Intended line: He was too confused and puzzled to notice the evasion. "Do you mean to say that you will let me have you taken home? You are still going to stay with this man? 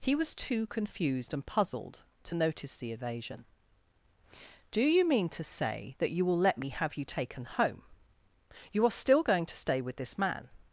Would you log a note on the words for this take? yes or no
no